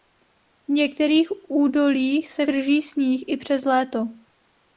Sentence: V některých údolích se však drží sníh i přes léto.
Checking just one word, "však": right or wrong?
wrong